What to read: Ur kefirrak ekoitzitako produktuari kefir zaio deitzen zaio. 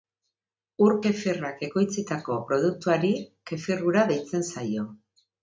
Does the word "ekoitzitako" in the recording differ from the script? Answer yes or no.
no